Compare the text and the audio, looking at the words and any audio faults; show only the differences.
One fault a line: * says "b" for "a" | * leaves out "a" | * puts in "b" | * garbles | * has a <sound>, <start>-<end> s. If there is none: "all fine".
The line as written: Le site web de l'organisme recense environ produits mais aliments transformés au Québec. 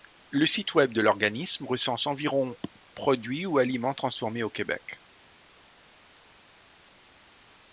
* says "ou" for "mais"